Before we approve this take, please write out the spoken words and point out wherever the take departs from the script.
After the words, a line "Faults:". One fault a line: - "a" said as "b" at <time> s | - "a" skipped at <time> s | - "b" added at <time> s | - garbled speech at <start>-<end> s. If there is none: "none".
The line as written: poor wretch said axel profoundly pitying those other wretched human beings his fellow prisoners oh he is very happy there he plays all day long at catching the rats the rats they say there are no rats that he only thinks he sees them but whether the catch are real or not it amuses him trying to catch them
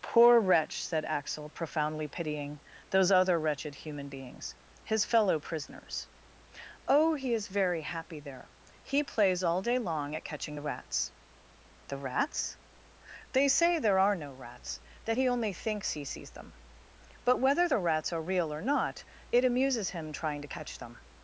poor wretch said axel profoundly pitying those other wretched human beings his fellow prisoners oh he is very happy there he plays all day long at catching the rats the rats they say there are no rats that he only thinks he sees them but whether the rats are real or not it amuses him trying to catch them
Faults:
- "catch" said as "rats" at 17.8 s